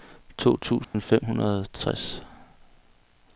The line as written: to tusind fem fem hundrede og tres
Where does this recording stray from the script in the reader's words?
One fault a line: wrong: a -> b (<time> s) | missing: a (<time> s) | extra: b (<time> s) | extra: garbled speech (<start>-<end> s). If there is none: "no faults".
missing: fem (1.2 s)